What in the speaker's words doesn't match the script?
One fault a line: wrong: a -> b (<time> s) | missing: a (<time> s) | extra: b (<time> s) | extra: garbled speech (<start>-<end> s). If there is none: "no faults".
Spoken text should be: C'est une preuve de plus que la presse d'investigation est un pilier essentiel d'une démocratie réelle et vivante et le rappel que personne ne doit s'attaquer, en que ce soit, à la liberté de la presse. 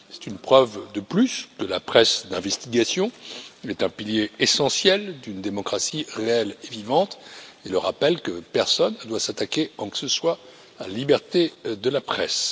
no faults